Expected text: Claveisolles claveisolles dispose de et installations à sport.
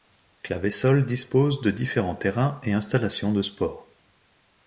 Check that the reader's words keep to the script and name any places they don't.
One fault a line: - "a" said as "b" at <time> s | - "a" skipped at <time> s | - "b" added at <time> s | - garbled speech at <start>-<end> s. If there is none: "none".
- "claveisolles" skipped at 1.1 s
- "différents terrains" added at 1.7 s
- "à" said as "de" at 3.3 s